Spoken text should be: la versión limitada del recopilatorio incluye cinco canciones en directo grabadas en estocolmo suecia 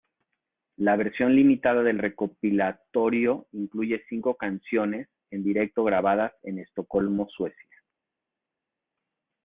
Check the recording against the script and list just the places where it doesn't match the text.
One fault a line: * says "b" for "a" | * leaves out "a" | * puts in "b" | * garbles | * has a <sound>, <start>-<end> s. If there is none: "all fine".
all fine